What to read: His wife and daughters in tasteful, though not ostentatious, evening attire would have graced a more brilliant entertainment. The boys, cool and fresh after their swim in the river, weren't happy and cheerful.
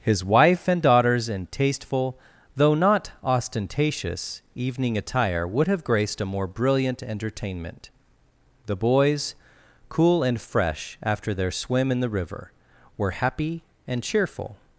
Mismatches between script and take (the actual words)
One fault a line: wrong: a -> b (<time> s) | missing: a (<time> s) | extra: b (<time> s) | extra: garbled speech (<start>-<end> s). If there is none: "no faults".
wrong: weren't -> were (13.0 s)